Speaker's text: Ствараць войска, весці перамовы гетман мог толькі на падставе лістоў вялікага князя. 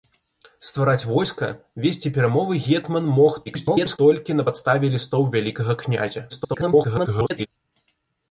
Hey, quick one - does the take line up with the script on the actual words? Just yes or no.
no